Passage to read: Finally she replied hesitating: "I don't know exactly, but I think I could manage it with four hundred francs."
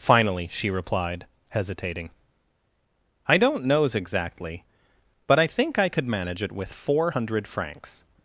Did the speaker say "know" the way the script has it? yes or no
no